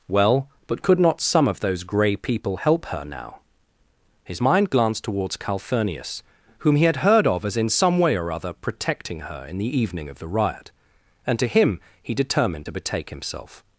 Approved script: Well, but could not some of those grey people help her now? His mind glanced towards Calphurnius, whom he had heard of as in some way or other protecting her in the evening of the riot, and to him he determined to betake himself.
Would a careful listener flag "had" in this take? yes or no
no